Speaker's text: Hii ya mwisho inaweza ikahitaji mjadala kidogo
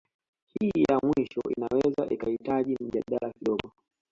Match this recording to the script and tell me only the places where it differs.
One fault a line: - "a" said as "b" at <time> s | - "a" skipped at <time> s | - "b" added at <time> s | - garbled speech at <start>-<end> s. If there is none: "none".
none